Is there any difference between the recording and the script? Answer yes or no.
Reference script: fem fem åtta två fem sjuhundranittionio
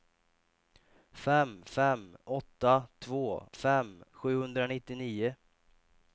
no